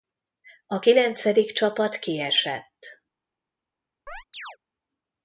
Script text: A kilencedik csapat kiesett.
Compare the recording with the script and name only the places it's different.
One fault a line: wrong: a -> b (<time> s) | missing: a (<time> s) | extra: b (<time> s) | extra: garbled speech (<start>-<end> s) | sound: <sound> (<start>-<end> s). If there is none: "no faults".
sound: chirp (4.1-4.6 s)